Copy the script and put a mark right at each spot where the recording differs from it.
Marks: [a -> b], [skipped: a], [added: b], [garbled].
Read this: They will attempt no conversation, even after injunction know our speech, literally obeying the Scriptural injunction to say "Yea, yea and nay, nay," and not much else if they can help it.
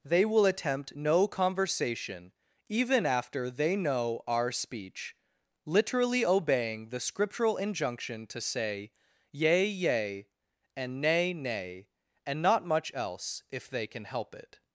They will attempt no conversation, even after [injunction -> they] know our speech, literally obeying the Scriptural injunction to say "Yea, yea and nay, nay," and not much else if they can help it.